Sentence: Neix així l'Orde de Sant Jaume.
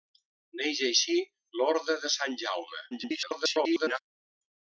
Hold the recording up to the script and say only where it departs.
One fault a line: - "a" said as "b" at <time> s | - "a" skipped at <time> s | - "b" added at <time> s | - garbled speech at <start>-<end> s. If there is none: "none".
- garbled speech at 2.9-4.0 s